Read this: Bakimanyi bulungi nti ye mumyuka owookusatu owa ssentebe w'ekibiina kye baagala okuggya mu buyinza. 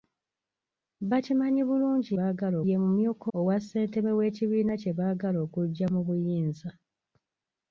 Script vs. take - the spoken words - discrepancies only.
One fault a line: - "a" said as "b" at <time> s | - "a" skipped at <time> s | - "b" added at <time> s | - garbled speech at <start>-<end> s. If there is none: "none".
- "nti" said as "baagala" at 2.2 s
- "owookusatu" skipped at 3.3 s